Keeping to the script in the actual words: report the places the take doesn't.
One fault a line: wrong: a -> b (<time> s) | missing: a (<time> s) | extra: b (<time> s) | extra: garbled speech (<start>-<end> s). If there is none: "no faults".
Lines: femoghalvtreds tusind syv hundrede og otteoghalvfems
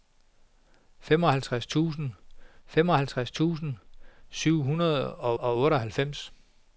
extra: femoghalvtreds tusind (2.7 s)
extra: og (5.3 s)